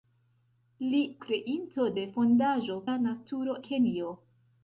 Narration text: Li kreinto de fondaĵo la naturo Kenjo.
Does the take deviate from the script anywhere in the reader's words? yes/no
no